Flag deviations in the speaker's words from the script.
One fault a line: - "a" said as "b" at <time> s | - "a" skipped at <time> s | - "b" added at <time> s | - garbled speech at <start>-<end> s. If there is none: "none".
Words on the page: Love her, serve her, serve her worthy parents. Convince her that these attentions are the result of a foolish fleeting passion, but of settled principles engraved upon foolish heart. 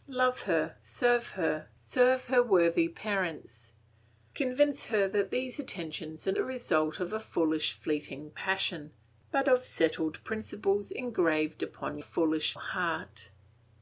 none